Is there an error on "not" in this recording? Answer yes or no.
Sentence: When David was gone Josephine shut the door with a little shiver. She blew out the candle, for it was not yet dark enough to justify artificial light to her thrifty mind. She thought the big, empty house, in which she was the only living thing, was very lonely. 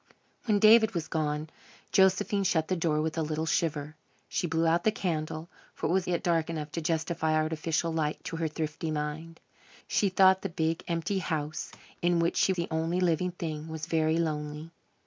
yes